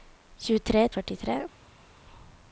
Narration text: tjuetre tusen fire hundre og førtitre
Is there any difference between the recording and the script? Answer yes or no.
yes